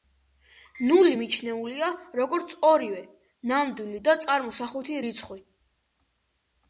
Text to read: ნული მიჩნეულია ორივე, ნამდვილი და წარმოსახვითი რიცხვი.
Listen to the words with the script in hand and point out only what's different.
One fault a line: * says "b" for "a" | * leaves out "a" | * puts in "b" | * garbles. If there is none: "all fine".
* puts in "როგორც"